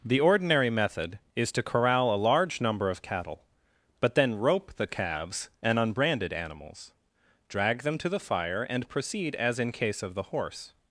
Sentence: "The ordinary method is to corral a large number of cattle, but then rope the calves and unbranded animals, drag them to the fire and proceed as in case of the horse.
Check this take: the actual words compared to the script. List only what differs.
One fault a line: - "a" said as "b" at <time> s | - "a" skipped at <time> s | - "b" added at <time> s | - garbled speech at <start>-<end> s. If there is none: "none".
none